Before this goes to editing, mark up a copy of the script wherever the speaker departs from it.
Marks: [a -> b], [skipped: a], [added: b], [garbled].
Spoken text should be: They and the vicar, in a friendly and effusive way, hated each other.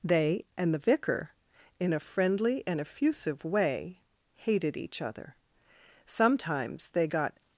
They and the vicar, in a friendly and effusive way, hated each other. [added: Sometimes they got]